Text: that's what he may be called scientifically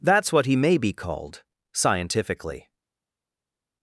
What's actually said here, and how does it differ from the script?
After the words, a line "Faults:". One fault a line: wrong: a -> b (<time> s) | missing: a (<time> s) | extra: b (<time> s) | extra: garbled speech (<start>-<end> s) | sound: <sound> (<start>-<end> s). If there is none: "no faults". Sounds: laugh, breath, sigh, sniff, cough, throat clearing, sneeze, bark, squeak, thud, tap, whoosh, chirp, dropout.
that's what he may be called scientifically
Faults:
no faults